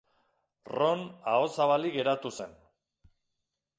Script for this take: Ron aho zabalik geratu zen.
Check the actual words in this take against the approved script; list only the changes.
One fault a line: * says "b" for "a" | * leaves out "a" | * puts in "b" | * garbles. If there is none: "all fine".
all fine